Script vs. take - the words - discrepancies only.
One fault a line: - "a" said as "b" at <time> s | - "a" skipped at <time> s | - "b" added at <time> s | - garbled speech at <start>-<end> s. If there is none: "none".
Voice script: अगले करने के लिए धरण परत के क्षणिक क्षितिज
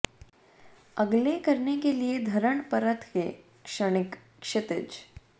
none